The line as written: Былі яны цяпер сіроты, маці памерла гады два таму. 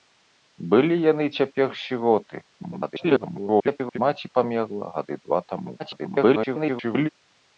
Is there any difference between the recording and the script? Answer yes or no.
yes